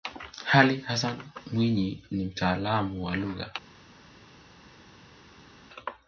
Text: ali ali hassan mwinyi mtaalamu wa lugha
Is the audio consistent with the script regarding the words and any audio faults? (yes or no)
no